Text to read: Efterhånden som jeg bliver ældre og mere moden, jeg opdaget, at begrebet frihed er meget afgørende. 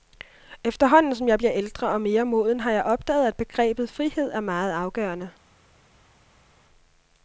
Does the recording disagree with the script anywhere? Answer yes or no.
yes